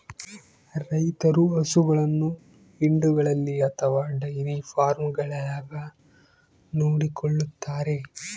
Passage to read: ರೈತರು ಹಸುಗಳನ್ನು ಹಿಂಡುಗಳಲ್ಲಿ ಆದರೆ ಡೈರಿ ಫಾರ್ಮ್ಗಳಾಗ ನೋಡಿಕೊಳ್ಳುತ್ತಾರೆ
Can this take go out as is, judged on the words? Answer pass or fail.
fail